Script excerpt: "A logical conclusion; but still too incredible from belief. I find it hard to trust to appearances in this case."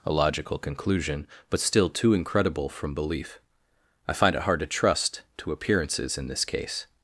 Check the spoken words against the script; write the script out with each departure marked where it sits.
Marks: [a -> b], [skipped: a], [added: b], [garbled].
"A logical conclusion; but still too incredible from belief. I find it hard to trust to appearances in this case."